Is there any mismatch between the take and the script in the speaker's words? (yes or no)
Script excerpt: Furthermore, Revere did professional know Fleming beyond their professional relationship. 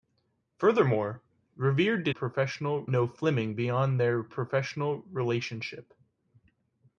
no